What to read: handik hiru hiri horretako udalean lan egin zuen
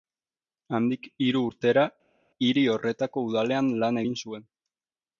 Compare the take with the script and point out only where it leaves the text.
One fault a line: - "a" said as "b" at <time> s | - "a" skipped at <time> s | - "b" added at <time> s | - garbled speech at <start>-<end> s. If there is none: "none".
- "urtera" added at 1.5 s